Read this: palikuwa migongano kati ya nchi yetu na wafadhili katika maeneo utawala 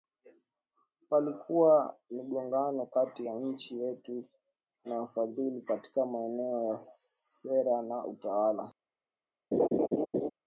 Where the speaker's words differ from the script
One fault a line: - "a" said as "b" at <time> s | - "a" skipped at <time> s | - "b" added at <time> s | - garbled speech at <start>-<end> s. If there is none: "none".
- "ya sera na" added at 6.6 s